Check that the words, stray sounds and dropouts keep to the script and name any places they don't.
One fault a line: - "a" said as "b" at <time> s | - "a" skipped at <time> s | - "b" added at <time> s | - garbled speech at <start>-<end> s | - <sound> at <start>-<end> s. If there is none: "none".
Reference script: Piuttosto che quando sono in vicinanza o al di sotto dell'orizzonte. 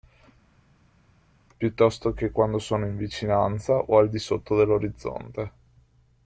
none